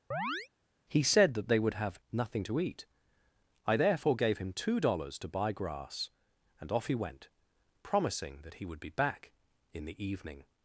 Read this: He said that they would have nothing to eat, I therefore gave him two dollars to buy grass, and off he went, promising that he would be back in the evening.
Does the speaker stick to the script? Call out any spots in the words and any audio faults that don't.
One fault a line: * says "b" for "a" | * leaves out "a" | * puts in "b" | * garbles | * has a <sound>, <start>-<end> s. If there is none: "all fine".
* has a chirp, 0.1-0.5 s